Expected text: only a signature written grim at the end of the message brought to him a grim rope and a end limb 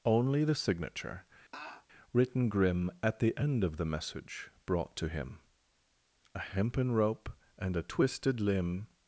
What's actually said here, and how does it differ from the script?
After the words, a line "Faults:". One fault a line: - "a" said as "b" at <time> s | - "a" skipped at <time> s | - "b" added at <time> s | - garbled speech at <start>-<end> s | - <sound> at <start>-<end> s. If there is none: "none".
only the signature written grim at the end of the message brought to him a hempen rope and a twisted limb
Faults:
- "a" said as "the" at 0.4 s
- laugh at 1.5-1.9 s
- "grim" said as "hempen" at 6.4 s
- "end" said as "twisted" at 7.8 s